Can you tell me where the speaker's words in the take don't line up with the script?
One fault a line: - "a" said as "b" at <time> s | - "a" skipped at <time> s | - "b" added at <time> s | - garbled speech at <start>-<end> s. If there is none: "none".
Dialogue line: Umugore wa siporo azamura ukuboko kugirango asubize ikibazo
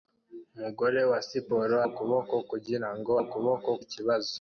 - "azamura" skipped at 1.8 s
- "asubize" said as "ukuboko" at 3.2 s